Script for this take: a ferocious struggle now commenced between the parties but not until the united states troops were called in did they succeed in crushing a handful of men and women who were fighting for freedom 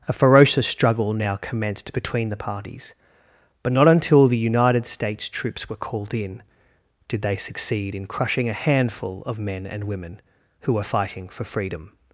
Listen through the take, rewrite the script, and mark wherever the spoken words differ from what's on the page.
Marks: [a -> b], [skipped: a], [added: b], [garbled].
a ferocious struggle now commenced between the parties but not until the united states troops were called in did they succeed in crushing a handful of men and women who were fighting for freedom